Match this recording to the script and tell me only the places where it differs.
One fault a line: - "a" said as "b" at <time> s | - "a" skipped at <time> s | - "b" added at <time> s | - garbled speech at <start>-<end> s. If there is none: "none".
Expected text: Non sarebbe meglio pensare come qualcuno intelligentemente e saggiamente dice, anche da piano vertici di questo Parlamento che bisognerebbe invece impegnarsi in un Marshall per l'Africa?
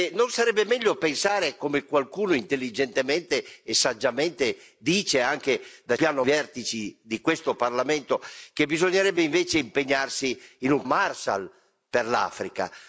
none